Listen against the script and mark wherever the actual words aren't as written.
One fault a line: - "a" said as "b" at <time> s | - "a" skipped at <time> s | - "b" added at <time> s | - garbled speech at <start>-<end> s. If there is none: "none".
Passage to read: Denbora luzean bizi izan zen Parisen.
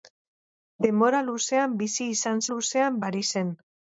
- "zen" said as "luzean" at 2.5 s